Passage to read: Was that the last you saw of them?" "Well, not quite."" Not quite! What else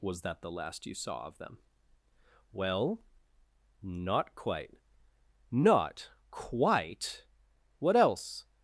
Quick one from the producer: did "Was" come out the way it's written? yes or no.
yes